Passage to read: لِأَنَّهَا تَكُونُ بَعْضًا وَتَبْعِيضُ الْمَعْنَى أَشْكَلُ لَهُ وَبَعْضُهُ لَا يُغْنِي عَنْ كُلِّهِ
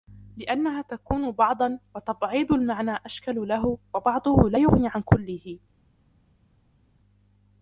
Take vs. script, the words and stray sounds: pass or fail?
pass